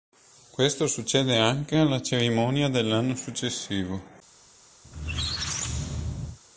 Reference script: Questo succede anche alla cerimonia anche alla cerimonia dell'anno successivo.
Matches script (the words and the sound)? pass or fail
fail